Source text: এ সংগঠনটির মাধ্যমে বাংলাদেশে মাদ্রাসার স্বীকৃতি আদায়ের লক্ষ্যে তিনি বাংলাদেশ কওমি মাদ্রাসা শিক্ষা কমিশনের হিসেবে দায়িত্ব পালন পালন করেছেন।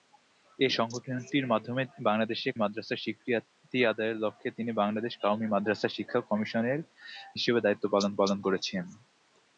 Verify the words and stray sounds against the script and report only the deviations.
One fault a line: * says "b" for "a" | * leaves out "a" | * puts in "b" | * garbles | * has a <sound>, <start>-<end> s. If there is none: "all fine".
all fine